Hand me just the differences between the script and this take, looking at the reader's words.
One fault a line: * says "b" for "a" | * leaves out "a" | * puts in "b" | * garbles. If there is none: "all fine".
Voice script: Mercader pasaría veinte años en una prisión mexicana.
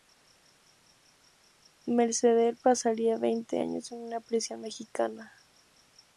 all fine